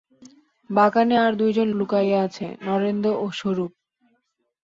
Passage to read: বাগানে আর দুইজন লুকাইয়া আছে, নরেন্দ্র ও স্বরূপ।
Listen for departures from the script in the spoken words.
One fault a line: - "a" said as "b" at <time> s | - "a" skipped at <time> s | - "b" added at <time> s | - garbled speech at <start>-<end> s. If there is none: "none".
none